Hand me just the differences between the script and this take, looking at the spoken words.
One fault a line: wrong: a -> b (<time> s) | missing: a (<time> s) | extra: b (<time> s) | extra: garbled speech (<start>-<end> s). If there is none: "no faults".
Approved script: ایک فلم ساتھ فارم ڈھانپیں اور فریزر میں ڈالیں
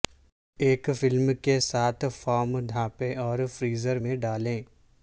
extra: کے (1.4 s)